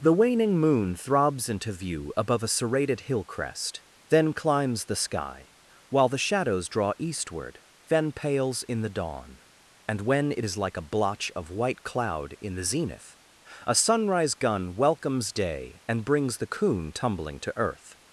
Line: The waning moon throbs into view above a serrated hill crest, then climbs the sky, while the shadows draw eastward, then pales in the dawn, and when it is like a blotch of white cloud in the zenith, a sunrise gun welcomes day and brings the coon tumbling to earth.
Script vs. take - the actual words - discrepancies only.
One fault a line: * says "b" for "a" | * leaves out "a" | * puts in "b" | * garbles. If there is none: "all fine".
all fine